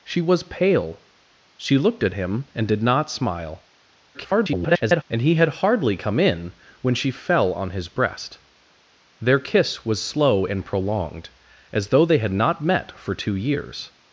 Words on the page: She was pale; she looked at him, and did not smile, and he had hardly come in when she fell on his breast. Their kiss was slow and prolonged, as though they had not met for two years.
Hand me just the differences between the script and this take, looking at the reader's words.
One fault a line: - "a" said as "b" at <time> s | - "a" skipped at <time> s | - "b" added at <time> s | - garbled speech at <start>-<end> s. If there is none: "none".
- garbled speech at 4.1-5.0 s